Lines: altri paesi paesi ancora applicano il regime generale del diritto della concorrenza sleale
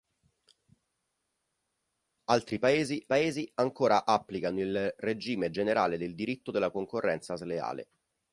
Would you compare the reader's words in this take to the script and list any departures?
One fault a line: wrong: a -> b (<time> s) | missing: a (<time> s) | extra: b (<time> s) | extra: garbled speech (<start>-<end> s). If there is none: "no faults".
no faults